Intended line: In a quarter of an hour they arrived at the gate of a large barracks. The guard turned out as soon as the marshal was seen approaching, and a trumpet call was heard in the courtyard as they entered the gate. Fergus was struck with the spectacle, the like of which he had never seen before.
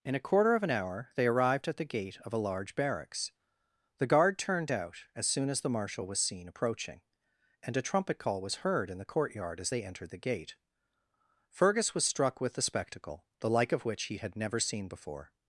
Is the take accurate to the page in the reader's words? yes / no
yes